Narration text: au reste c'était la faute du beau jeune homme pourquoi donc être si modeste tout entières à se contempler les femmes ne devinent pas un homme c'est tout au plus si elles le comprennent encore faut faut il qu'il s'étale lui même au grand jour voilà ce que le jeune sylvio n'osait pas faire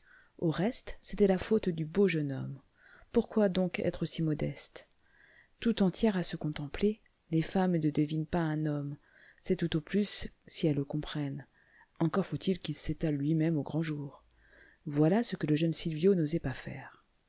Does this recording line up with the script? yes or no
no